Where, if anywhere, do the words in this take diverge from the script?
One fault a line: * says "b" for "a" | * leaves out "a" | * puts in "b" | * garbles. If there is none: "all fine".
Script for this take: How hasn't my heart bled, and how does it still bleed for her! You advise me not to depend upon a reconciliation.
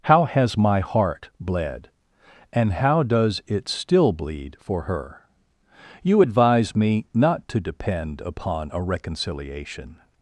* says "has" for "hasn't"